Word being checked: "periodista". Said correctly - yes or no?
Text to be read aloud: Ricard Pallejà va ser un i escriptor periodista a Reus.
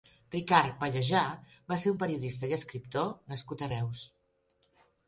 no